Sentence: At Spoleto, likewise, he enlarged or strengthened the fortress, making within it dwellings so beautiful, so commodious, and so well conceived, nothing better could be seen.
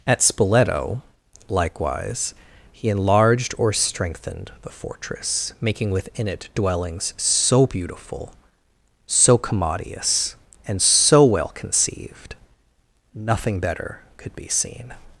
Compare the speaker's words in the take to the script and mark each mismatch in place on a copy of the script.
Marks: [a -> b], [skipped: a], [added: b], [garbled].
At Spoleto, likewise, he enlarged or strengthened the fortress, making within it dwellings so beautiful, so commodious, and so well conceived, nothing better could be seen.